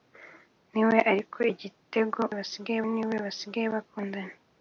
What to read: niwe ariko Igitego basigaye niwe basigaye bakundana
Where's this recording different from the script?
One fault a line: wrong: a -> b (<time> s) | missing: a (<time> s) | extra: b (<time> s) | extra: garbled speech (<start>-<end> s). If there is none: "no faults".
no faults